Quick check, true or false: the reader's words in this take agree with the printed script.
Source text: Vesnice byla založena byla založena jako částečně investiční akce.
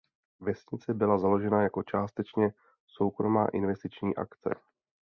false